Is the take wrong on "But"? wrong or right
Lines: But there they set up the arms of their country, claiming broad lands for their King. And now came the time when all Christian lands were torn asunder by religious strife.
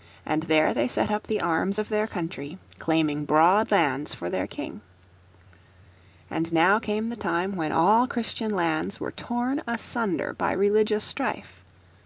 wrong